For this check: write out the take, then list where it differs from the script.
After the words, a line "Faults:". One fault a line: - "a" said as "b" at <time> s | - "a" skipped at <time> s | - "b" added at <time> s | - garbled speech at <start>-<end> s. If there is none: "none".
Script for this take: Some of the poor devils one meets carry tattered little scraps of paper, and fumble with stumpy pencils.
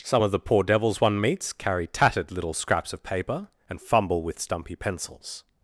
Some of the poor devils one meets carry tattered little scraps of paper, and fumble with stumpy pencils.
Faults:
none